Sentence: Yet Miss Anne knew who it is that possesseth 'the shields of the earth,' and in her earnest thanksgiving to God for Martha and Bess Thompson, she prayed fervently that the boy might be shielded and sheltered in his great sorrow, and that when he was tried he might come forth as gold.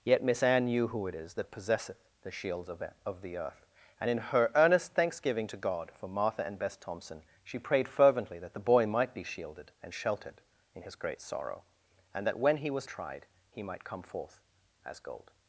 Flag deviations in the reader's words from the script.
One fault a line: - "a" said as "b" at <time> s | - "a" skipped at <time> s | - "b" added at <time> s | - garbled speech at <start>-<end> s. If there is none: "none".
- "of" added at 3.0 s